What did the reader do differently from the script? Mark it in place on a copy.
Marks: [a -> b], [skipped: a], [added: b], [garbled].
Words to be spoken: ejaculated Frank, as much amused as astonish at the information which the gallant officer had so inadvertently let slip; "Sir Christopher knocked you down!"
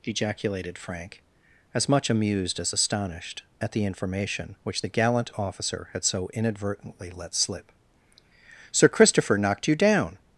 ejaculated Frank, as much amused as [astonish -> astonished] at the information which the gallant officer had so inadvertently let slip; "Sir Christopher knocked you down!"